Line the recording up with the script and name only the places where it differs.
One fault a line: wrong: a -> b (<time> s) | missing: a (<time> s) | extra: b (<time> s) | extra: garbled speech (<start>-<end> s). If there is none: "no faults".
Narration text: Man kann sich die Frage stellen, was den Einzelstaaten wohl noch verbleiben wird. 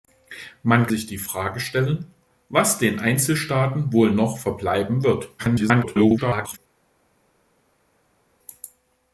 missing: kann (0.9 s)
extra: garbled speech (5.4-6.6 s)